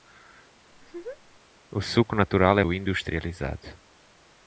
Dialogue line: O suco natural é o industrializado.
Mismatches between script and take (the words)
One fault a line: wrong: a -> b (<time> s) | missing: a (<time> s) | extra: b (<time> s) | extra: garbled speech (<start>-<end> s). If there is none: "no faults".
no faults